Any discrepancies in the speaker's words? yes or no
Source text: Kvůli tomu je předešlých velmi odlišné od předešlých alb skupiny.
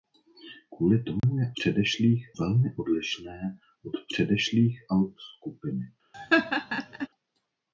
no